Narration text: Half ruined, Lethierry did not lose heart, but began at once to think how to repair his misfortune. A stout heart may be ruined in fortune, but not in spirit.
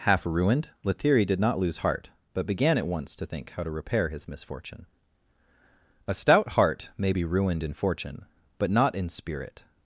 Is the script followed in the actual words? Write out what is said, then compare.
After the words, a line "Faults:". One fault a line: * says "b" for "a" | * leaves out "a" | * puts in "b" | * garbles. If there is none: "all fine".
Half ruined, Lethierry did not lose heart, but began at once to think how to repair his misfortune. A stout heart may be ruined in fortune, but not in spirit.
Faults:
all fine